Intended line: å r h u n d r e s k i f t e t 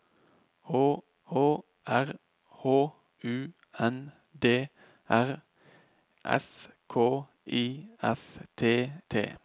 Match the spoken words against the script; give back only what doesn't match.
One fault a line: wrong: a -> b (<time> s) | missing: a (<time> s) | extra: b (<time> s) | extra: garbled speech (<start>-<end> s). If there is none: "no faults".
extra: å (1.3 s)
missing: e (5.4 s)
missing: e (8.9 s)